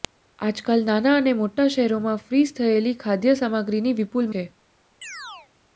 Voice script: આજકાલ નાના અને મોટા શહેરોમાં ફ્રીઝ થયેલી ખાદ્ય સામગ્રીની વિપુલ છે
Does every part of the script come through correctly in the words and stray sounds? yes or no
no